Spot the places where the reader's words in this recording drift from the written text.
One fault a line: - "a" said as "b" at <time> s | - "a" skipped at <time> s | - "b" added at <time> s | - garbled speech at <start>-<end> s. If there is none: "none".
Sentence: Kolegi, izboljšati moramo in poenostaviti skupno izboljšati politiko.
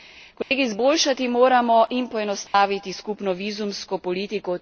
- "izboljšati" said as "vizumsko" at 3.3 s